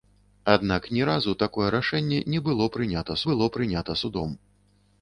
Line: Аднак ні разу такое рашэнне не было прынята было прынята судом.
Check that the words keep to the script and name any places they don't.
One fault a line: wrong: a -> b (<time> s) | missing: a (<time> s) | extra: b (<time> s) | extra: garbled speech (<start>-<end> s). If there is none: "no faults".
no faults